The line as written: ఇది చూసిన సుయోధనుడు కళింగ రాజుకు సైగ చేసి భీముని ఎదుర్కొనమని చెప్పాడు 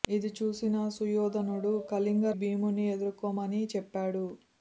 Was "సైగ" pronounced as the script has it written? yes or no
no